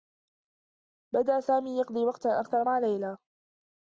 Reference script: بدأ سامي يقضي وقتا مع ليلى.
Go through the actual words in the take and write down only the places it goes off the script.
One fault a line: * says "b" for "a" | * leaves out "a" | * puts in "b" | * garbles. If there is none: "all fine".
* puts in "أكثر"